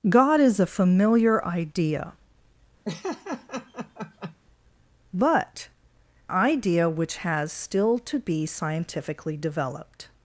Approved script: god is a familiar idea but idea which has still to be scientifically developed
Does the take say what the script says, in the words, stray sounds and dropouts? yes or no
no